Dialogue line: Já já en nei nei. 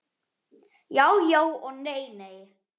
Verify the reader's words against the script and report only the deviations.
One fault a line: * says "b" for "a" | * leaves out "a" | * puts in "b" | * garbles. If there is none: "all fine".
* says "og" for "en"